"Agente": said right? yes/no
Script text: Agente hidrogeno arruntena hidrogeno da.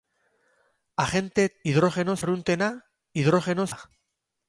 yes